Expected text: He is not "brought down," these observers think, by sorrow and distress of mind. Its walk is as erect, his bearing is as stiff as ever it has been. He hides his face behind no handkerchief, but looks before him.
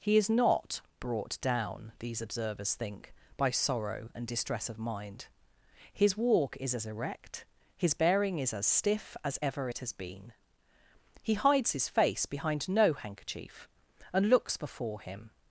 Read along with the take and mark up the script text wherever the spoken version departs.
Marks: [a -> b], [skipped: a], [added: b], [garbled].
He is not "brought down," these observers think, by sorrow and distress of mind. [Its -> His] walk is as erect, his bearing is as stiff as ever it has been. He hides his face behind no handkerchief, [but -> and] looks before him.